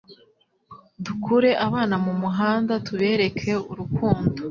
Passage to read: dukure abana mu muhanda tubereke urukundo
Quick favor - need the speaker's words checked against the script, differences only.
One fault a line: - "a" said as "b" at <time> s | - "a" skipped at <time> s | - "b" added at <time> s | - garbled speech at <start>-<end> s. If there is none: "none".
none